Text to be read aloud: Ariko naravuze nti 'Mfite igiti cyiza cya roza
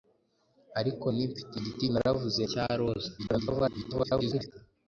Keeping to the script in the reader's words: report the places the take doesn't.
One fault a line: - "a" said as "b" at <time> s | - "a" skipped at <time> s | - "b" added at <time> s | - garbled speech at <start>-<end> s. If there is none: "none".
- "naravuze" skipped at 1.1 s
- "cyiza" said as "naravuze" at 1.9 s
- garbled speech at 3.2-4.5 s